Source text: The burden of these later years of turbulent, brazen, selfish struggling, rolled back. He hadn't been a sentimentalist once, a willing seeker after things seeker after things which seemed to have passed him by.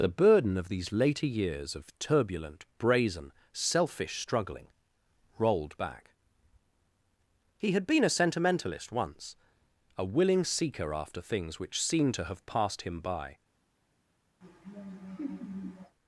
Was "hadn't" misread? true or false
true